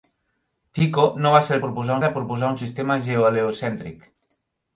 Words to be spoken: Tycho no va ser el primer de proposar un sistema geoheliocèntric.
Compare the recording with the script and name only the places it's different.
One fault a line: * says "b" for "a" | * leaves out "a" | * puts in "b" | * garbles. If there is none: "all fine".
* says "proposar" for "primer"